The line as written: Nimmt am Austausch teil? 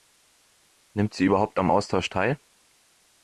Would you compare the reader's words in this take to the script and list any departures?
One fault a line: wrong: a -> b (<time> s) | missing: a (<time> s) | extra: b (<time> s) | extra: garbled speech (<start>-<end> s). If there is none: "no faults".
extra: sie überhaupt (1.1 s)